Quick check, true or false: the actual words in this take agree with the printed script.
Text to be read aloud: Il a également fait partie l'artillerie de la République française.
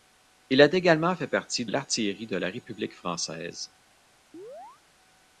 true